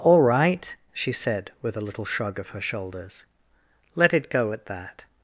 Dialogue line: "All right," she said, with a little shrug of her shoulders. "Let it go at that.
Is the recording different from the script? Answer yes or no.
no